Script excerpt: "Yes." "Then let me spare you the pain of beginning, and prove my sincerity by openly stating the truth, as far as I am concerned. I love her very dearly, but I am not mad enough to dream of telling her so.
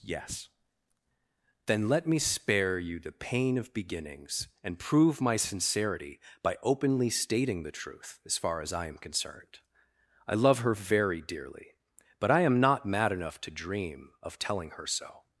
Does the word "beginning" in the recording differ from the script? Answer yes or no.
yes